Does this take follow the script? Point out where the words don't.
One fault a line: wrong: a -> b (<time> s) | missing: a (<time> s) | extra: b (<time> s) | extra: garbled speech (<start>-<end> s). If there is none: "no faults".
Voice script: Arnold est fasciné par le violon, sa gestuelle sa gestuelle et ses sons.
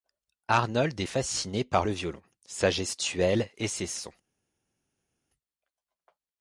missing: sa gestuelle (3.5 s)